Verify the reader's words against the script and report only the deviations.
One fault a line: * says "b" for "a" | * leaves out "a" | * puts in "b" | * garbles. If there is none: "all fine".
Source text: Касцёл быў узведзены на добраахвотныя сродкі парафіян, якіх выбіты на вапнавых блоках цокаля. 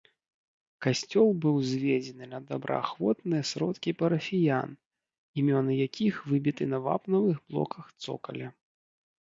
* puts in "імёны"